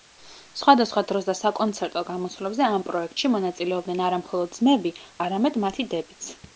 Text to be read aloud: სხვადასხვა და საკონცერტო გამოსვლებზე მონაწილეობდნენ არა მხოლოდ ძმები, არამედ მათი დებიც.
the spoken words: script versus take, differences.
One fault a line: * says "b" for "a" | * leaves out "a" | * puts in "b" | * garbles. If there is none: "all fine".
* puts in "დროს"
* puts in "ამ პროექტში"